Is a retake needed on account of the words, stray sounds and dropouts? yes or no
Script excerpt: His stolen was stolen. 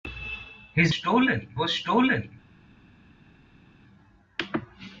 no